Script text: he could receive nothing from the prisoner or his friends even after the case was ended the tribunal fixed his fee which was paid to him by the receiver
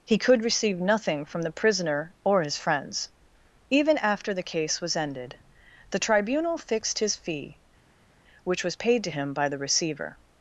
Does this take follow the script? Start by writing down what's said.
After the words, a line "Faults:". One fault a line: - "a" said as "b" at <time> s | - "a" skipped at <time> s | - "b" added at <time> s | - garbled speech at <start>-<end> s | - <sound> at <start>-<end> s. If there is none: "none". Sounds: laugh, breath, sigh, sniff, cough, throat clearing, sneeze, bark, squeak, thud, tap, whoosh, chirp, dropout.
he could receive nothing from the prisoner or his friends even after the case was ended the tribunal fixed his fee which was paid to him by the receiver
Faults:
none